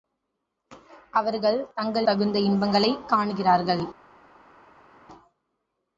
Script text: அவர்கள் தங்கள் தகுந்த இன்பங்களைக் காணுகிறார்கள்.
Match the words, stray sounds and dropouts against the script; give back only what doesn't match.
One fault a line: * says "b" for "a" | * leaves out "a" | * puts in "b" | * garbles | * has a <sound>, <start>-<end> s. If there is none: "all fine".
all fine